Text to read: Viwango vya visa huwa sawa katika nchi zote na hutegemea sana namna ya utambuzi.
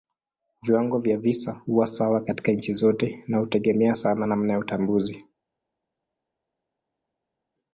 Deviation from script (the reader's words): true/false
false